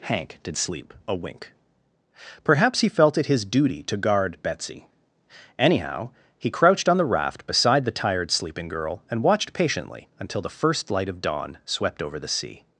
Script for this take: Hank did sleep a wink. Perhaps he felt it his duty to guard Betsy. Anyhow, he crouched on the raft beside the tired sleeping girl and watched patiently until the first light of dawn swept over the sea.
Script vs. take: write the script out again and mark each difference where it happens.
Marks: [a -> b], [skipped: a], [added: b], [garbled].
Hank did sleep a wink. Perhaps he felt it his duty to guard Betsy. Anyhow, he crouched on the raft beside the tired sleeping girl and watched patiently until the first light of dawn swept over the sea.